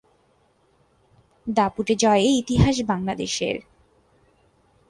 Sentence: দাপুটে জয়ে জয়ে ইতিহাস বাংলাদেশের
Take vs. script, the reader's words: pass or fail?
fail